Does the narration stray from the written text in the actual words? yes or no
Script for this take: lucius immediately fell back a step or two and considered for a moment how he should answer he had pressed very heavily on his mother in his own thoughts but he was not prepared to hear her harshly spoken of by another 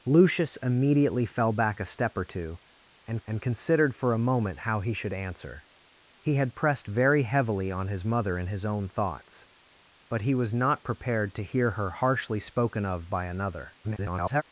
yes